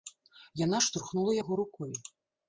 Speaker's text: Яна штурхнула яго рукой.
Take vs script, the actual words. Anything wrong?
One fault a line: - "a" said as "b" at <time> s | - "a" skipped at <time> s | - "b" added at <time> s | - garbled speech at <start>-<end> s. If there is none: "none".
none